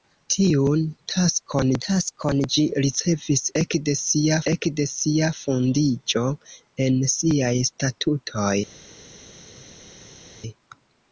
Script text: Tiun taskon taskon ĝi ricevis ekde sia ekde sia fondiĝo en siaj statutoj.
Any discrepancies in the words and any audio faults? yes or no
no